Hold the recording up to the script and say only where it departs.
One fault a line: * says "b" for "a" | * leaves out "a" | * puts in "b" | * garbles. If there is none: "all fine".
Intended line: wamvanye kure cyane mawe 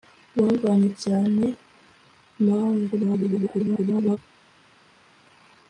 * leaves out "kure"
* garbles